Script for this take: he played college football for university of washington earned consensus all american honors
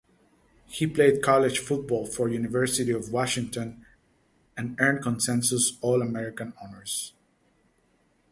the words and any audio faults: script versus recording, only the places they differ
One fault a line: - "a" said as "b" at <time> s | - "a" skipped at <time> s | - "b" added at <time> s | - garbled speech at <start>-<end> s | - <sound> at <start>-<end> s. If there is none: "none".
- "and" added at 4.6 s